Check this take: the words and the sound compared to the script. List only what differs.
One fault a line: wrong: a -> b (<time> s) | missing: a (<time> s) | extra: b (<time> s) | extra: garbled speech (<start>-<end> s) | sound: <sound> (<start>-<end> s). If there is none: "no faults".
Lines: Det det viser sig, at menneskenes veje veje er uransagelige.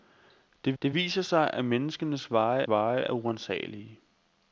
no faults